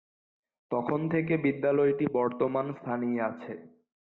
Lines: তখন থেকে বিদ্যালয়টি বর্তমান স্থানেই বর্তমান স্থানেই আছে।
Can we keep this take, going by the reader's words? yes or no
no